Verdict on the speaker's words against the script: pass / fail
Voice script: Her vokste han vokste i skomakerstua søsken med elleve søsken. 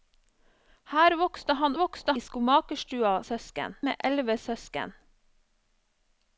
pass